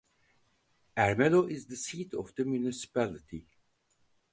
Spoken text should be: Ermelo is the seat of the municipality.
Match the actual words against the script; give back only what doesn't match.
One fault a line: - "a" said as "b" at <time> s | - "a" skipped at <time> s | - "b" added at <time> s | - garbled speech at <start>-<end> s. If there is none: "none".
none